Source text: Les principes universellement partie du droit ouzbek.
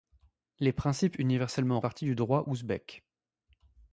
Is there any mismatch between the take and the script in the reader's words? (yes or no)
no